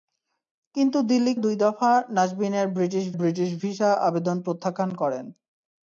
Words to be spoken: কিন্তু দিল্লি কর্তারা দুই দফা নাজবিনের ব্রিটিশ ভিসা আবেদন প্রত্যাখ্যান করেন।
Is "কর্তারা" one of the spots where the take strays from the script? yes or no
yes